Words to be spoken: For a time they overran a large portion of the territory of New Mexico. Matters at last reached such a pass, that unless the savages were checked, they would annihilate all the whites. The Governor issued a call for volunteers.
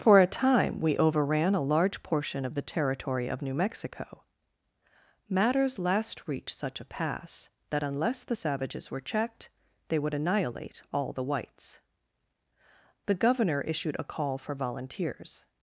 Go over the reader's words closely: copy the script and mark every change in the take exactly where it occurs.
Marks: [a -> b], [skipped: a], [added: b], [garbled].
For a time [they -> we] overran a large portion of the territory of New Mexico. Matters [skipped: at] last reached such a pass, that unless the savages were checked, they would annihilate all the whites. The Governor issued a call for volunteers.